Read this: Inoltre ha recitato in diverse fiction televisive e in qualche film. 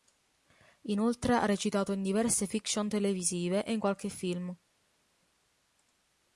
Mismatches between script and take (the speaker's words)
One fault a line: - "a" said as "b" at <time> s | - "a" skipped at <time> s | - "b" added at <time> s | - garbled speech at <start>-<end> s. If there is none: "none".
none